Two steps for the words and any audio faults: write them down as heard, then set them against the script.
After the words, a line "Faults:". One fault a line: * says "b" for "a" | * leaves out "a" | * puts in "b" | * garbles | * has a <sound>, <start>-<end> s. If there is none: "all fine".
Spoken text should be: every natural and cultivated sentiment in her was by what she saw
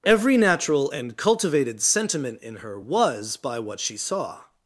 every natural and cultivated sentiment in her was by what she saw
Faults:
all fine